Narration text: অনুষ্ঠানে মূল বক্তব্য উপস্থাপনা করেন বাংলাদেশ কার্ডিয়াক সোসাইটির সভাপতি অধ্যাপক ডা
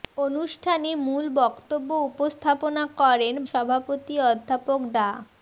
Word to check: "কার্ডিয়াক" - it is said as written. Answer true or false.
false